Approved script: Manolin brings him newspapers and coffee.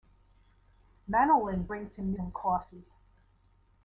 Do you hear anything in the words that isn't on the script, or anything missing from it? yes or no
yes